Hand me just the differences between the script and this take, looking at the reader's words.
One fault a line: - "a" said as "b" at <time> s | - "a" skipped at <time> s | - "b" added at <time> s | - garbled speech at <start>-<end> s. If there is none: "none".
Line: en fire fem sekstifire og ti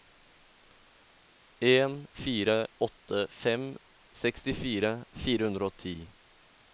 - "åtte" added at 2.8 s
- "fire hundre" added at 5.2 s